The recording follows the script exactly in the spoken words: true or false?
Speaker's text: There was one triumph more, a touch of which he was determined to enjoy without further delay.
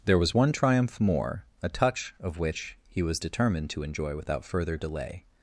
true